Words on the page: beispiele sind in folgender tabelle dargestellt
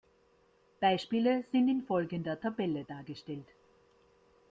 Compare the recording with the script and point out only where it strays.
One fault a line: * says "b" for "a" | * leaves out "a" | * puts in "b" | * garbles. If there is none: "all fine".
all fine